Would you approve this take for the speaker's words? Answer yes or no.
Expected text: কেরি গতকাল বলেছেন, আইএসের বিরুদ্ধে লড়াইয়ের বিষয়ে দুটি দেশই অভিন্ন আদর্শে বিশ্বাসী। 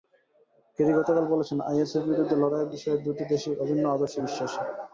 yes